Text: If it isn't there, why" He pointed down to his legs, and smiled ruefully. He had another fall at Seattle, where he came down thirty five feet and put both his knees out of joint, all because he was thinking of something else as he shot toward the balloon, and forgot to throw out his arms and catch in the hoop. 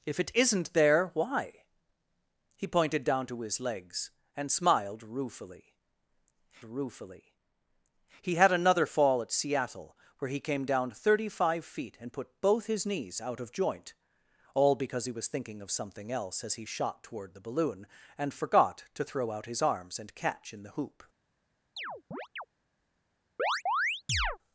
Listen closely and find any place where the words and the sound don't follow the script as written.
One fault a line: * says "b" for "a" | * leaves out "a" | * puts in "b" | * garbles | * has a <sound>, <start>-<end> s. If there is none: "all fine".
* puts in "ruefully"
* has a chirp, 21.8-22.5 s
* has a chirp, 23.4-24.4 s